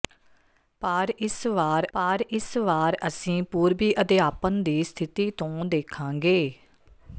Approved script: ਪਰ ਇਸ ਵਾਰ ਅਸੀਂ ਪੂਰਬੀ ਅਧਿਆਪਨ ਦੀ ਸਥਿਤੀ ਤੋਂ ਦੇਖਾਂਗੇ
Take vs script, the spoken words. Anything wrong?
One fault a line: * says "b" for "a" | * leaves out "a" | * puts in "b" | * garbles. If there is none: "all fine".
* puts in "ਪਰ ਇਸ ਵਾਰ"